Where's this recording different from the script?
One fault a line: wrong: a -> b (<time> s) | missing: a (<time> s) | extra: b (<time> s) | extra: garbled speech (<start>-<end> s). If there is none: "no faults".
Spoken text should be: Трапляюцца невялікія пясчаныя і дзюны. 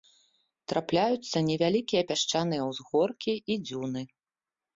extra: ўзгоркі (2.7 s)